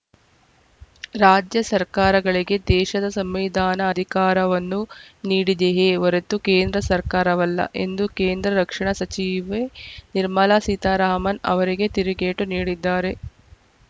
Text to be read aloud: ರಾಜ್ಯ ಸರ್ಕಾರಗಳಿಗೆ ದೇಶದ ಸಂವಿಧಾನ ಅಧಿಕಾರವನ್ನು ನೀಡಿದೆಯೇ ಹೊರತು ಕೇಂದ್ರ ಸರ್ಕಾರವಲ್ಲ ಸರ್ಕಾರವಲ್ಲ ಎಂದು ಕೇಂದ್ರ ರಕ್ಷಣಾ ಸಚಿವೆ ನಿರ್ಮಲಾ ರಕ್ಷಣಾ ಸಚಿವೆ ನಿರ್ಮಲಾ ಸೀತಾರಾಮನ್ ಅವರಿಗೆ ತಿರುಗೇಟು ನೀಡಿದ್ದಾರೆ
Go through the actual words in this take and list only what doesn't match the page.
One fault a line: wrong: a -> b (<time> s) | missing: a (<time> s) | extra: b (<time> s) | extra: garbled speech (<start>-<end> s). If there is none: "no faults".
missing: ಸರ್ಕಾರವಲ್ಲ (7.6 s)
missing: ರಕ್ಷಣಾ ಸಚಿವೆ ನಿರ್ಮಲಾ (10.6 s)